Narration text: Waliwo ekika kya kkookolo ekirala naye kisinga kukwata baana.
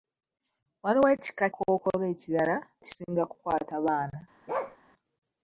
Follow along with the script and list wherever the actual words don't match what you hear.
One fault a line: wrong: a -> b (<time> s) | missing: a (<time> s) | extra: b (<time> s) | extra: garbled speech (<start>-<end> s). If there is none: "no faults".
missing: kya (1.4 s)
missing: naye (2.6 s)